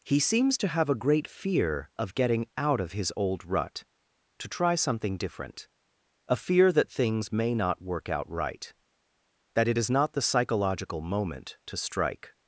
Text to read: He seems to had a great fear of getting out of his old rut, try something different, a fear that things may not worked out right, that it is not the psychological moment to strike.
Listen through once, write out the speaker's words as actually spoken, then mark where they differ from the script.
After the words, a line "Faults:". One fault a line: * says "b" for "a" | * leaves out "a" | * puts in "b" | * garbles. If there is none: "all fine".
He seems to have a great fear of getting out of his old rut, to try something different, a fear that things may not work out right, that it is not the psychological moment to strike.
Faults:
* says "have" for "had"
* puts in "to"
* says "work" for "worked"